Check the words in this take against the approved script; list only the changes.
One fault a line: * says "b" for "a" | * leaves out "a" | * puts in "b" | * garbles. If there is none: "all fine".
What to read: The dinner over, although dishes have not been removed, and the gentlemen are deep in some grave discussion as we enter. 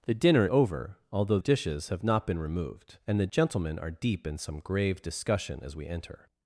all fine